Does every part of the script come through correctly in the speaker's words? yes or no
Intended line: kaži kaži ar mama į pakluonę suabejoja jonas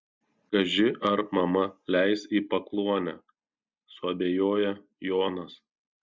no